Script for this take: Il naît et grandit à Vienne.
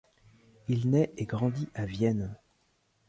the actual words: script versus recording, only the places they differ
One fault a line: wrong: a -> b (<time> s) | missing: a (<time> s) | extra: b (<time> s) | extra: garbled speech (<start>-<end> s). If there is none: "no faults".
no faults